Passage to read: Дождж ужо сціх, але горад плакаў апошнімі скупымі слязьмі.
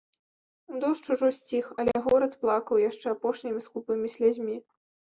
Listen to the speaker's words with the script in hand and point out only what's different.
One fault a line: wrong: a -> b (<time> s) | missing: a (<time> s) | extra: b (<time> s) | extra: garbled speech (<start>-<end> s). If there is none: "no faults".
extra: яшчэ (2.9 s)